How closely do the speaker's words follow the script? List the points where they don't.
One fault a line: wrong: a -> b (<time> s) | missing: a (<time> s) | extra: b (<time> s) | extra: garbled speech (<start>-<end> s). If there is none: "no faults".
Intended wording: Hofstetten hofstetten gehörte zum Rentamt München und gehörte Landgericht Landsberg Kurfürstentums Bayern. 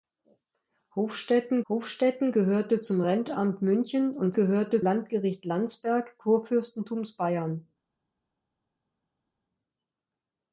no faults